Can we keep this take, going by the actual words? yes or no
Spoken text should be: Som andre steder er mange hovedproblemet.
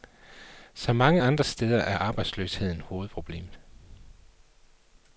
no